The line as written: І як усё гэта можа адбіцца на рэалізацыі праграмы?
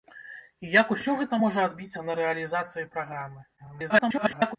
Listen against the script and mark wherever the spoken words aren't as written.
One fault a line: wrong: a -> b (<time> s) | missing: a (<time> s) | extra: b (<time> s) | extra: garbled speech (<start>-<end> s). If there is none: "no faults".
extra: garbled speech (3.6-4.6 s)